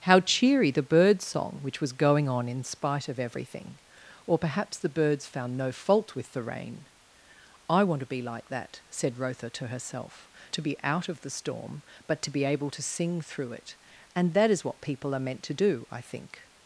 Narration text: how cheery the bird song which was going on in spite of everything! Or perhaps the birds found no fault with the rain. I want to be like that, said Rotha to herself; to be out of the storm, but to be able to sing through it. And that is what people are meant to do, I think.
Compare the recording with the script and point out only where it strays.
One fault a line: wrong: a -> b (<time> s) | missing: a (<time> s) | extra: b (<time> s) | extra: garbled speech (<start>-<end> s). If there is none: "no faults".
no faults